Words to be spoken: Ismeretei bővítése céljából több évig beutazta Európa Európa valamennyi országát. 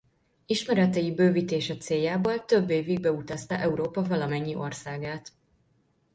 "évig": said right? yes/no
yes